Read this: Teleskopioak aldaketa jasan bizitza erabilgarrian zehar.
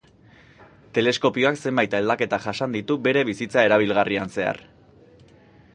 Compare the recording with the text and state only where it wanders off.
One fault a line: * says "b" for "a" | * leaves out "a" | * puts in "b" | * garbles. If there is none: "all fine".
* puts in "zenbait"
* puts in "ditu bere"